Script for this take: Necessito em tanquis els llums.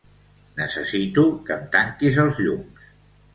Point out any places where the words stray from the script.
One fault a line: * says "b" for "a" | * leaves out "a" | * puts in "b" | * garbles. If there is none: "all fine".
* puts in "que"